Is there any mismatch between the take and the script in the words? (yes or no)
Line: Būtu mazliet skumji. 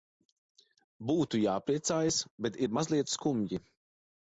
yes